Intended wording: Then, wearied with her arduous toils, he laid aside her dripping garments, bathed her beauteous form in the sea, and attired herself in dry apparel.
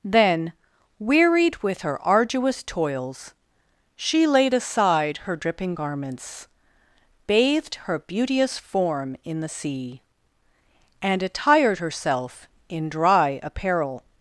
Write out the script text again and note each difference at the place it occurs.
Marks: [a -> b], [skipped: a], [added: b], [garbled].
Then, wearied with her arduous toils, [he -> she] laid aside her dripping garments, bathed her beauteous form in the sea, and attired herself in dry apparel.